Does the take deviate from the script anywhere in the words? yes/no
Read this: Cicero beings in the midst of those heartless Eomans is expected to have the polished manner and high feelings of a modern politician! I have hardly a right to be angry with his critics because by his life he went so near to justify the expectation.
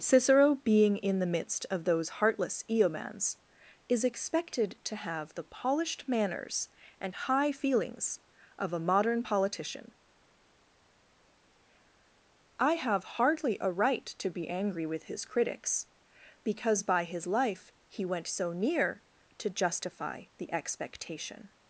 yes